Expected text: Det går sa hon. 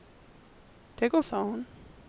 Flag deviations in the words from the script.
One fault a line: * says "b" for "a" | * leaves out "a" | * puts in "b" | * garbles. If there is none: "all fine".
all fine